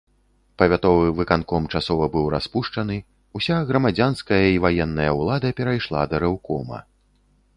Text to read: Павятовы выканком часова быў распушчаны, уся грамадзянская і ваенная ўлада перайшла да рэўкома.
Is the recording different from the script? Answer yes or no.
no